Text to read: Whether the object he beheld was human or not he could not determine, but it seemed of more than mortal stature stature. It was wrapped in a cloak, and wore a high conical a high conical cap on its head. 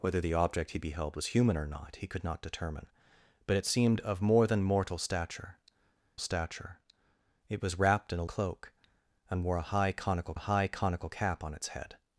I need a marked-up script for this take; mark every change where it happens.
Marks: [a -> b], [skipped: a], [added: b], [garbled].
Whether the object he beheld was human or not he could not determine, but it seemed of more than mortal stature stature. It was wrapped in a cloak, and wore a high conical a high conical cap on its head.